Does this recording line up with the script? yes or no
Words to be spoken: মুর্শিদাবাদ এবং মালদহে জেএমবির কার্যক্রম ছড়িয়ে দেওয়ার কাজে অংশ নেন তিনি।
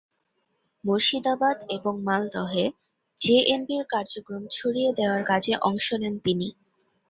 yes